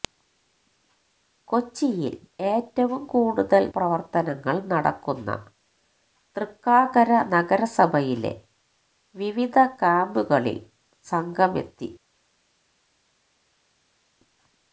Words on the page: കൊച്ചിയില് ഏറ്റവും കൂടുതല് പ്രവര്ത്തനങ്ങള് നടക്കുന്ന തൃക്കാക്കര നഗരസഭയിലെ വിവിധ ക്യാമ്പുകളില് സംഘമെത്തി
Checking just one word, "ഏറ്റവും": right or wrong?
right